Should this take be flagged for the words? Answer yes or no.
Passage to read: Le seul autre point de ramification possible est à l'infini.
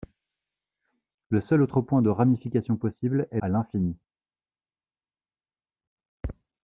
no